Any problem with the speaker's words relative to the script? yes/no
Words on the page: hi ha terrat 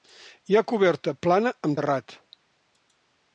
yes